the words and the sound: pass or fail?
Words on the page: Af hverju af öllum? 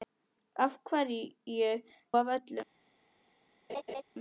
fail